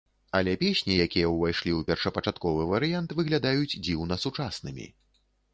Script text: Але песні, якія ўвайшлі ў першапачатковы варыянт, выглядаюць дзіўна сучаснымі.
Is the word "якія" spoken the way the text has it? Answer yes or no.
yes